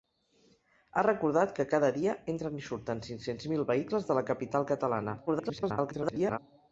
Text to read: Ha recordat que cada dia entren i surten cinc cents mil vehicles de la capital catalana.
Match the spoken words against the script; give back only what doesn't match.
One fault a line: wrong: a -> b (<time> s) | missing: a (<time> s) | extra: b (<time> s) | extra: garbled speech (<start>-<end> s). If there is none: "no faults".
extra: garbled speech (5.3-6.4 s)